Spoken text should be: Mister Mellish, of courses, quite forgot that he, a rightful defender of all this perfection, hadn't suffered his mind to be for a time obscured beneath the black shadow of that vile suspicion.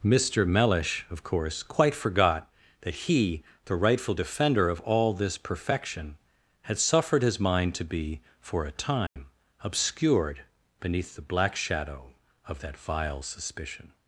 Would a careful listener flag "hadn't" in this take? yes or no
yes